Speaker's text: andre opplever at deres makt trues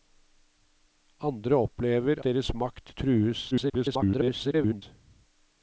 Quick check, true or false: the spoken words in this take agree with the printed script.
false